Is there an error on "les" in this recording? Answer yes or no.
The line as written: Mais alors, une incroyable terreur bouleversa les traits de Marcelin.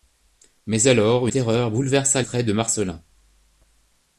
yes